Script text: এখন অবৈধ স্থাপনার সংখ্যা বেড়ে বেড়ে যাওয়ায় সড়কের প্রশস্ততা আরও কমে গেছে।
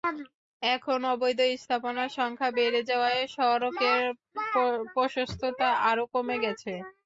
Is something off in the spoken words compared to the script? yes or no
yes